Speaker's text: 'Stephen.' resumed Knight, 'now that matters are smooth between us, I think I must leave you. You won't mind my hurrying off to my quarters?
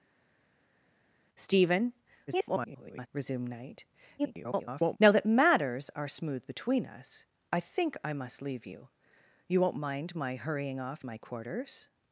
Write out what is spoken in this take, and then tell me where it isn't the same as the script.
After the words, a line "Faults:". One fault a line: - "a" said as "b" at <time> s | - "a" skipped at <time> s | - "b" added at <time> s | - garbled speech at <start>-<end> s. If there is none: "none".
'Stephen.' [garbled] resumed Knight, [garbled] 'now that matters are smooth between us, I think I must leave you. You won't mind my hurrying off my quarters?
Faults:
- garbled speech at 2.3-3.1 s
- garbled speech at 4.2-5.0 s
- "to" skipped at 11.0 s